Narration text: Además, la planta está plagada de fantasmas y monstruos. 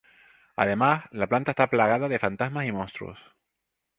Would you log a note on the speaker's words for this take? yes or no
no